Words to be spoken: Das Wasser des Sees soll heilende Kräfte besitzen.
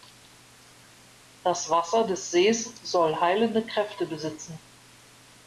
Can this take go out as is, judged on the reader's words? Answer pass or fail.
pass